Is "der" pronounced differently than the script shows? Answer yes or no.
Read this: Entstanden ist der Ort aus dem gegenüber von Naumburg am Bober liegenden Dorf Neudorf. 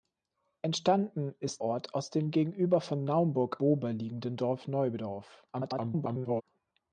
yes